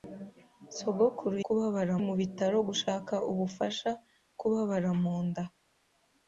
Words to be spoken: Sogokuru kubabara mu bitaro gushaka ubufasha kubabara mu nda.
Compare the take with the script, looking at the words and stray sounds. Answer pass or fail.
pass